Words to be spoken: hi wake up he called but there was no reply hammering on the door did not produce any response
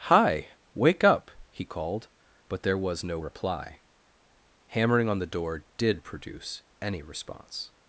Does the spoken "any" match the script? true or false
true